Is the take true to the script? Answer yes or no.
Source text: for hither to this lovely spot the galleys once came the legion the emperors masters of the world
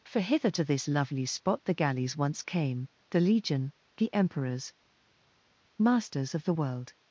yes